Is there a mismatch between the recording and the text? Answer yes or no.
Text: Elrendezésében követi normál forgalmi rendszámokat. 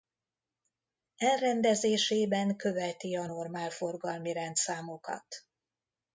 yes